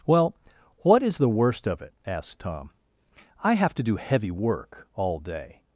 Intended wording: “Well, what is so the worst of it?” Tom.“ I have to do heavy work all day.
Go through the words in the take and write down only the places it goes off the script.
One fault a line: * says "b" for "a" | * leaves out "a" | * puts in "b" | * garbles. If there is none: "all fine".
* leaves out "so"
* puts in "asked"